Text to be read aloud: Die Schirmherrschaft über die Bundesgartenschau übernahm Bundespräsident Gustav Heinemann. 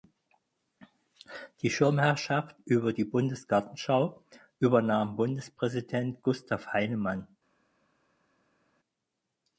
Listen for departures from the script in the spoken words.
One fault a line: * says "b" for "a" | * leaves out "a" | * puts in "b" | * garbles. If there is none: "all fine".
all fine